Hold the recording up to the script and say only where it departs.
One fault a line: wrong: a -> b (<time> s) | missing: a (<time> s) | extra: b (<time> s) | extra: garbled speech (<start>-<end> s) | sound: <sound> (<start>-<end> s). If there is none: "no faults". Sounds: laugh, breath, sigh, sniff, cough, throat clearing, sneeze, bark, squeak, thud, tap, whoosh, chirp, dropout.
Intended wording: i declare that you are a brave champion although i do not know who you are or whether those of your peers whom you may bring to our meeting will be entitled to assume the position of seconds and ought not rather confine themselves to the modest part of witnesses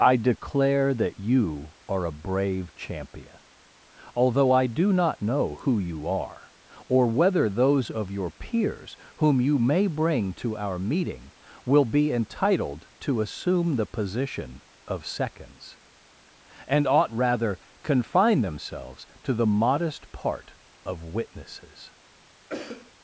missing: not (17.1 s)
sound: cough (22.5-22.9 s)